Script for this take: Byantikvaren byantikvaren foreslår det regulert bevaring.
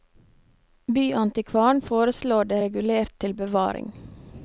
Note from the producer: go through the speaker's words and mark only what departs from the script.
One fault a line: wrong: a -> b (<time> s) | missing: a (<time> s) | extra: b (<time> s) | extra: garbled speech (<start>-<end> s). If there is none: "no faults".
missing: byantikvaren (1.8 s)
extra: til (3.2 s)